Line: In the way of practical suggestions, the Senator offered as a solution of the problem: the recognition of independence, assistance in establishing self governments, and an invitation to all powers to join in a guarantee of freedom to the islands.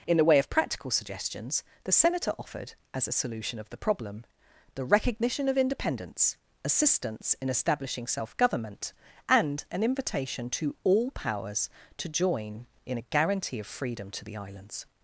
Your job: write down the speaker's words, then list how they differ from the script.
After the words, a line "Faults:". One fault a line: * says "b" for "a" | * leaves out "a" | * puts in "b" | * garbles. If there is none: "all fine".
In the way of practical suggestions, the Senator offered as a solution of the problem: the recognition of independence, assistance in establishing self government, and an invitation to all powers to join in a guarantee of freedom to the islands.
Faults:
* says "government" for "governments"